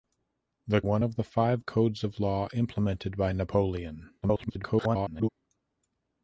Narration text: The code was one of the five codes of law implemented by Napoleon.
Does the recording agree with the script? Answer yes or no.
no